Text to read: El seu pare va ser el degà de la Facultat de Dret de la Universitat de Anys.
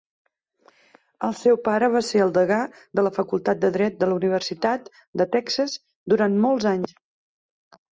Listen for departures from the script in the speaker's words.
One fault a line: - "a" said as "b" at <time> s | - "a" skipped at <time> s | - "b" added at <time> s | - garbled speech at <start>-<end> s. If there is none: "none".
- "Texas durant molts" added at 5.4 s